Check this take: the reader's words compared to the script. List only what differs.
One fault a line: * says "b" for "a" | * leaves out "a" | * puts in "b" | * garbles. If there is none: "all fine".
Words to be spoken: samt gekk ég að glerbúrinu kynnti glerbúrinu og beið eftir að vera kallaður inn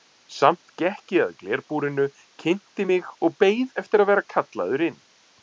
* says "mig" for "glerbúrinu"